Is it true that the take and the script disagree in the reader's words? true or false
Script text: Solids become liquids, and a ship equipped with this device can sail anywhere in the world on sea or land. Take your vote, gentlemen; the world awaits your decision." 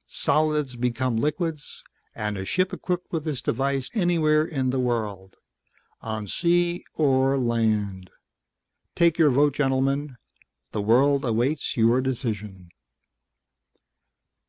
true